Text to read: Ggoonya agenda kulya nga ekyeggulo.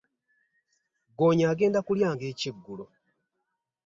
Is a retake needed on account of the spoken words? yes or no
no